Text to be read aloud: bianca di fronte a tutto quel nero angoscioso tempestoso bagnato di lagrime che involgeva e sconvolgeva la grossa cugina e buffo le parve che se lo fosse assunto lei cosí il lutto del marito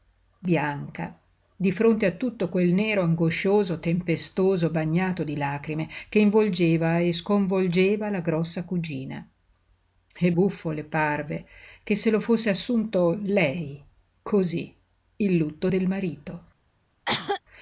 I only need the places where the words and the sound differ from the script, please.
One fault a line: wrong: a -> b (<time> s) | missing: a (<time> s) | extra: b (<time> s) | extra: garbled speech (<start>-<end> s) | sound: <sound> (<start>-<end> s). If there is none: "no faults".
sound: cough (17.0-17.4 s)